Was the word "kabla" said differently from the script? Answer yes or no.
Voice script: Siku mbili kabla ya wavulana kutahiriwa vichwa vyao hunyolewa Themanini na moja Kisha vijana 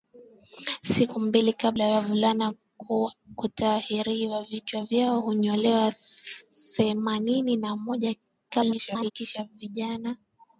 no